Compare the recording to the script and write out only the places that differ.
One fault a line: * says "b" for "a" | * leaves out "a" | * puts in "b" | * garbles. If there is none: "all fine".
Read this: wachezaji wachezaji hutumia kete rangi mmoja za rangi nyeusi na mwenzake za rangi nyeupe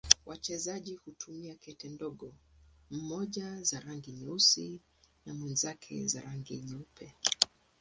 * leaves out "wachezaji"
* says "ndogo" for "rangi"